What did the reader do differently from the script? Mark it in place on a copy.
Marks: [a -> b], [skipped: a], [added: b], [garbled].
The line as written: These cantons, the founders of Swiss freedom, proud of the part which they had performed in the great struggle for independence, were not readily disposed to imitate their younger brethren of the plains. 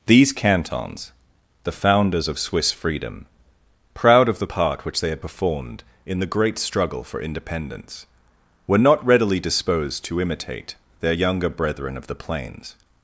These cantons, the founders of Swiss freedom, proud of the part which they had performed in the great struggle for independence, were not readily disposed to imitate their younger brethren of the plains.